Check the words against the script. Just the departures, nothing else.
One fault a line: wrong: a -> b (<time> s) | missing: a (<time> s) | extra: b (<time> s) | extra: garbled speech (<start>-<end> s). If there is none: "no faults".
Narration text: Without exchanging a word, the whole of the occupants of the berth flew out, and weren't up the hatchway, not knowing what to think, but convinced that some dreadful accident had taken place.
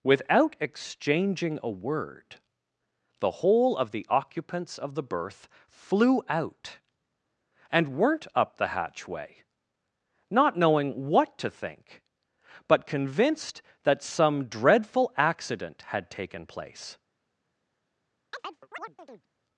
no faults